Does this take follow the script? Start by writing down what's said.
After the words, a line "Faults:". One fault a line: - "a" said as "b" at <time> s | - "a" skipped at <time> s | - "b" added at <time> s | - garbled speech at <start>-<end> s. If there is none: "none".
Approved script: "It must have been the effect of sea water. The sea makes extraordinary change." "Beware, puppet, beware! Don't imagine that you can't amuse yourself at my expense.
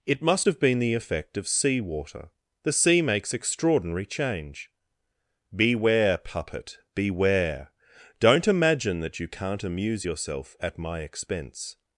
"It must have been the effect of sea water. The sea makes extraordinary change." "Beware, puppet, beware! Don't imagine that you can't amuse yourself at my expense.
Faults:
none